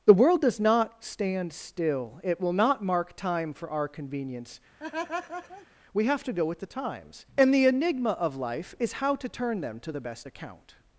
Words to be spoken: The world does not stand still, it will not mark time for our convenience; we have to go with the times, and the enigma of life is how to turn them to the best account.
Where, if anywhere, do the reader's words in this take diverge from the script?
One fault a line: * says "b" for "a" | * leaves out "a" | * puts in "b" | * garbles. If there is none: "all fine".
all fine